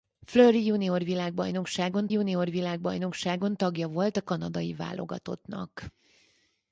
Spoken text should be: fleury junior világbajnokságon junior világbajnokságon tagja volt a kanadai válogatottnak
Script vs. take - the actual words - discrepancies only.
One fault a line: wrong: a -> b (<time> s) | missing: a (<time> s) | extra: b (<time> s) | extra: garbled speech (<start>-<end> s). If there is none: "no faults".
no faults